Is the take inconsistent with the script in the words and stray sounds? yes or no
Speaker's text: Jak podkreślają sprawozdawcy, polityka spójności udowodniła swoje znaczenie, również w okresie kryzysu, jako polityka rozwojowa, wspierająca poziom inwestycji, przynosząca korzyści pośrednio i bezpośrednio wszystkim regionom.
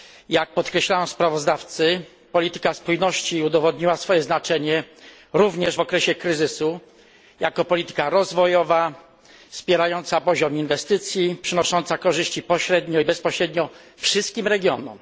no